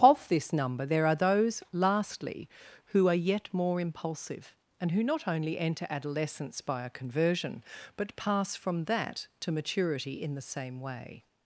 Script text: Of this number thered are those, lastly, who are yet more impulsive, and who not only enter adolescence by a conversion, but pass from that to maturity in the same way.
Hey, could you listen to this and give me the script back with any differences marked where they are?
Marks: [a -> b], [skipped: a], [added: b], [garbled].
Of this number [thered -> there] are those, lastly, who are yet more impulsive, and who not only enter adolescence by a conversion, but pass from that to maturity in the same way.